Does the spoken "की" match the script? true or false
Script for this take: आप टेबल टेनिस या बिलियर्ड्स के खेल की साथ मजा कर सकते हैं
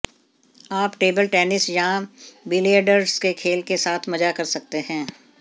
false